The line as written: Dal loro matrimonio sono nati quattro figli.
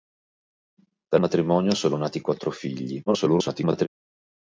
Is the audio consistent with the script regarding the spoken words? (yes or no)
no